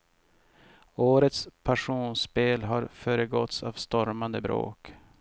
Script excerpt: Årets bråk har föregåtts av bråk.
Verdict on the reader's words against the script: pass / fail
fail